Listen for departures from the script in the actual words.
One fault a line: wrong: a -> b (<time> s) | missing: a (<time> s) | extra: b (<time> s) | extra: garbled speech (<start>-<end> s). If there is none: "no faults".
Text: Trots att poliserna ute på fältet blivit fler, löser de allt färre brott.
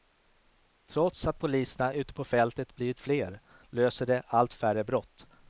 no faults